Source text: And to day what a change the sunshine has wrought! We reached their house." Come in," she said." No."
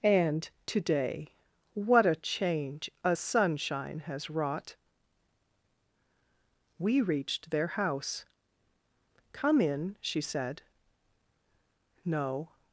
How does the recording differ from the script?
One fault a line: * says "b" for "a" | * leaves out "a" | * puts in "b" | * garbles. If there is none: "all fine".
* says "a" for "the"